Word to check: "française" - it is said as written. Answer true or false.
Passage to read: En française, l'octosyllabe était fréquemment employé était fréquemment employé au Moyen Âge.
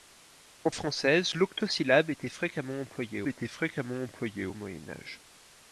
true